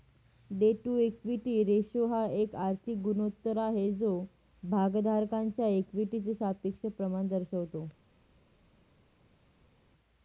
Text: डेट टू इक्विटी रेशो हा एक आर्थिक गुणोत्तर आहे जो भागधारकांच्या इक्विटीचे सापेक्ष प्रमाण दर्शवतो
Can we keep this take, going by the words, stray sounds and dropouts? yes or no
yes